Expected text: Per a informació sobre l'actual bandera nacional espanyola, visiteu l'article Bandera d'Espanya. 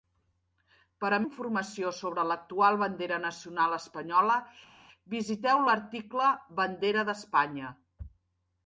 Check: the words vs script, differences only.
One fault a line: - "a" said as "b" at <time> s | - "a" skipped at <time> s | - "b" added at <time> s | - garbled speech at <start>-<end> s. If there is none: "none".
none